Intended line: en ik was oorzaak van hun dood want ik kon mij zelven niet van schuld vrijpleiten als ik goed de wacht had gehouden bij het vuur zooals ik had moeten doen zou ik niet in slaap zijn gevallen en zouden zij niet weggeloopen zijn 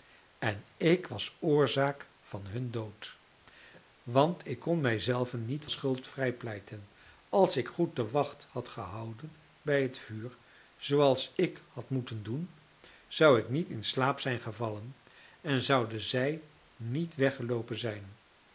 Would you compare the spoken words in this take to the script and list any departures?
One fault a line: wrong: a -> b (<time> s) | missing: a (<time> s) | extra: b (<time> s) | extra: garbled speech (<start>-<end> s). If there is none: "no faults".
missing: van (5.7 s)